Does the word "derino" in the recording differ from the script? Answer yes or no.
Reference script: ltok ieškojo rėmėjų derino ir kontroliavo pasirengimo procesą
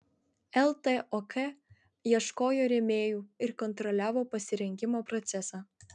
yes